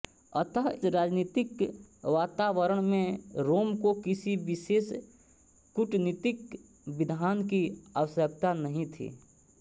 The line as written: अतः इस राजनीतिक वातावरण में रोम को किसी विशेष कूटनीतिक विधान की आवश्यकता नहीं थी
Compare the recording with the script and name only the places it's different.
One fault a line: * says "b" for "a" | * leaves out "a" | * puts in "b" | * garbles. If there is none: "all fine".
* leaves out "इस"